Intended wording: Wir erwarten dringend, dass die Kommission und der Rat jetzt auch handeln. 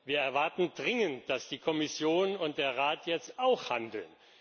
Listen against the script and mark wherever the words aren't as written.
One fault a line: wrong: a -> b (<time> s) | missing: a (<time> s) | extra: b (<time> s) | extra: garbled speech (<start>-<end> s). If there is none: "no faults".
no faults